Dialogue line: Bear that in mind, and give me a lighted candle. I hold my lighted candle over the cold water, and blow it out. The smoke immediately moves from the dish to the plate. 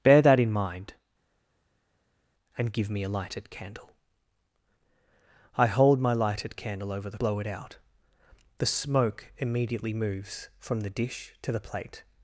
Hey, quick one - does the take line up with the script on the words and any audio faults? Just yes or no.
no